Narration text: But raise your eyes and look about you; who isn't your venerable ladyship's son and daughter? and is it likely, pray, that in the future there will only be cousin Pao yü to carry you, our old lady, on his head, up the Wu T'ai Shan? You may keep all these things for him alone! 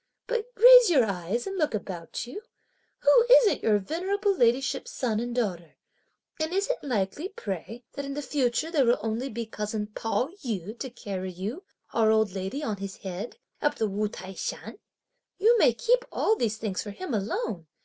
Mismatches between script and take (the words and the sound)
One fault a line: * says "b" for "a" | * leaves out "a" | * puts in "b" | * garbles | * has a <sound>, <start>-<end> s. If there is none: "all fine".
all fine